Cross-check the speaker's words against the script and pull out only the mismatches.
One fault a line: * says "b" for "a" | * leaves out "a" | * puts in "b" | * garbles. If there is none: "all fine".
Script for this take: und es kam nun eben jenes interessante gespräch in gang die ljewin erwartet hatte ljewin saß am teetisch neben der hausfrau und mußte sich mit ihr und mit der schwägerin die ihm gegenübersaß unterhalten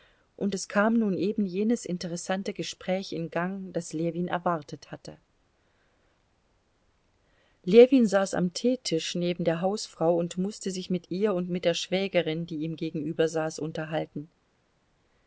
* says "das" for "die"